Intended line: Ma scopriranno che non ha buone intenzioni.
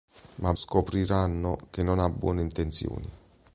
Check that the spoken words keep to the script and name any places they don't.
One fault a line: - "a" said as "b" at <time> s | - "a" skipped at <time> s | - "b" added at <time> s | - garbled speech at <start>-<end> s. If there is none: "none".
none